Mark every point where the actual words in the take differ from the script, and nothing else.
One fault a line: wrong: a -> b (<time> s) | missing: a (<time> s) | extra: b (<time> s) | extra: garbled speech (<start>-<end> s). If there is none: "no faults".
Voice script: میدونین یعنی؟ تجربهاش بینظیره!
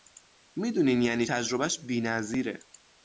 no faults